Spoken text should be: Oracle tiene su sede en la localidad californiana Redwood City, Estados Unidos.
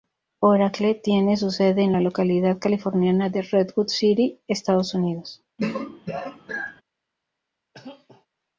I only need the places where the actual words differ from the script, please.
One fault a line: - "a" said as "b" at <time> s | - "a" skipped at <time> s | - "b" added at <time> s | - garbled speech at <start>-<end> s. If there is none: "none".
- "de" added at 3.3 s